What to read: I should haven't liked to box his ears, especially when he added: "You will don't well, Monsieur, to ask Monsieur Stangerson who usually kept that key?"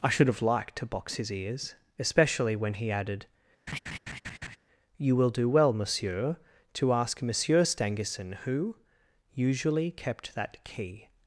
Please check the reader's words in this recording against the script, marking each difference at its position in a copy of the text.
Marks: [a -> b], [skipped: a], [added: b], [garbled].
I should [haven't -> have] liked to box his ears, especially when he added: "You will [don't -> do] well, Monsieur, to ask Monsieur Stangerson who usually kept that key?"